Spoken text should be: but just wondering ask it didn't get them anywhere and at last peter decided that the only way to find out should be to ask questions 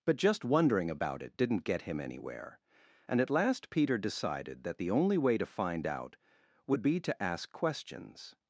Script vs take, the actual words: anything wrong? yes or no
yes